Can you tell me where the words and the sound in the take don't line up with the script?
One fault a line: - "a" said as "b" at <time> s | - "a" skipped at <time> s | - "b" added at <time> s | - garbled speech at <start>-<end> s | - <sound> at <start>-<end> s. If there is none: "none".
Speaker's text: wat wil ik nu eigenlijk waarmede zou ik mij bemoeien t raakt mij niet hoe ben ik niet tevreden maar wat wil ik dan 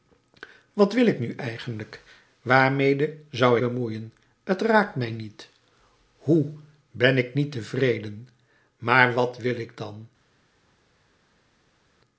- "ik mij" skipped at 3.6 s